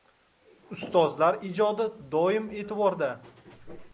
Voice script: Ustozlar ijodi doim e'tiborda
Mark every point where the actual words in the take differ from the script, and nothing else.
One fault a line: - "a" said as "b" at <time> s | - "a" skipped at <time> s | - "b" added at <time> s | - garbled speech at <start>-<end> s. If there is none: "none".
none